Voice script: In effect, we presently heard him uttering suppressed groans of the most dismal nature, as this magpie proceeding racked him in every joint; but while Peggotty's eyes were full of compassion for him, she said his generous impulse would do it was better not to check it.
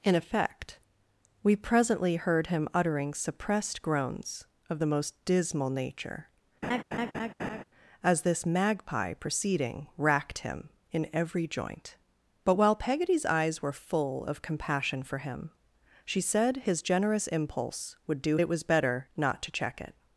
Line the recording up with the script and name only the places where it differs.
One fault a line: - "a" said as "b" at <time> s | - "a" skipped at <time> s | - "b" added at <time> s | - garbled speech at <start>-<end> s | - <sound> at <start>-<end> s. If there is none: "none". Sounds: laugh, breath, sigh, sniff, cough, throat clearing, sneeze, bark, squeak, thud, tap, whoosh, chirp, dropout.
- laugh at 6.6-7.6 s